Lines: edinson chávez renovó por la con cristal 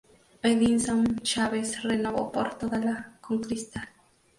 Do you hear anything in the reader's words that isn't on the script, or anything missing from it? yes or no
yes